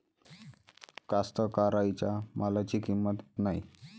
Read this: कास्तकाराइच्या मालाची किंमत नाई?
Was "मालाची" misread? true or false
false